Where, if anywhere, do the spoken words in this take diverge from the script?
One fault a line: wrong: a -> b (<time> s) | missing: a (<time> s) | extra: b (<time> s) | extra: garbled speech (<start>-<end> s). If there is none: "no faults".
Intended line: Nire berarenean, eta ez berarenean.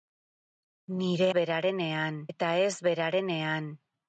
no faults